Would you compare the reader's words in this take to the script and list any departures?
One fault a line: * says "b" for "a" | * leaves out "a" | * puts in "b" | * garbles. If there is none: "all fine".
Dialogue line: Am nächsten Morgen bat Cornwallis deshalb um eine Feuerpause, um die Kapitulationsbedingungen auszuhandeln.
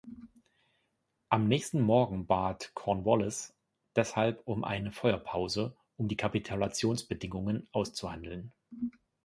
all fine